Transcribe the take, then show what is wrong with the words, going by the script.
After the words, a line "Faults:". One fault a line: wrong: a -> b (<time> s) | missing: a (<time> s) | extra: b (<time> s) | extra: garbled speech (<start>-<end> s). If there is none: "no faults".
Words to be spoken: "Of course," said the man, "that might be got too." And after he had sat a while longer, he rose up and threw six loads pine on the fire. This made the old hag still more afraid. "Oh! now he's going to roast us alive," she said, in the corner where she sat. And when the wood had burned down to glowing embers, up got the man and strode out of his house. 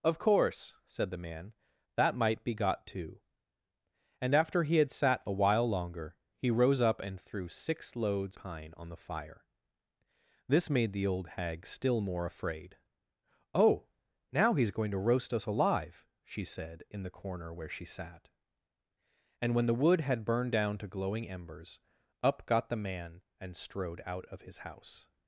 "Of course," said the man, "that might be got too." And after he had sat a while longer, he rose up and threw six loads pine on the fire. This made the old hag still more afraid. "Oh! now he's going to roast us alive," she said, in the corner where she sat. And when the wood had burned down to glowing embers, up got the man and strode out of his house.
Faults:
no faults